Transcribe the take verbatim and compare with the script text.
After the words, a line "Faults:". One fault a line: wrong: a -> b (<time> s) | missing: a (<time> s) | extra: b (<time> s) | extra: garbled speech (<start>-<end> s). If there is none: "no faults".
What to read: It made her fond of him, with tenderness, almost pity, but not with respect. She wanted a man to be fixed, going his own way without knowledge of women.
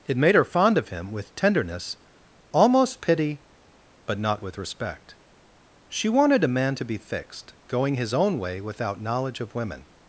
It made her fond of him, with tenderness, almost pity, but not with respect. She wanted a man to be fixed, going his own way without knowledge of women.
Faults:
no faults